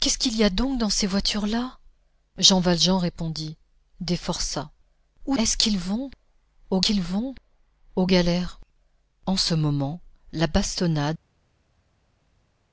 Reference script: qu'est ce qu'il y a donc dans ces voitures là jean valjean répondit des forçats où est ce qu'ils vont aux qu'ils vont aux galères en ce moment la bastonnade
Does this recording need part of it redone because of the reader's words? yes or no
no